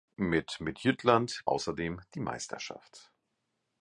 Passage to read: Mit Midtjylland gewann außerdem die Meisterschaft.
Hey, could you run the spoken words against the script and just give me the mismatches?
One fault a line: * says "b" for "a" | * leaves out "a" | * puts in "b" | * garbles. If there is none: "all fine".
* leaves out "gewann"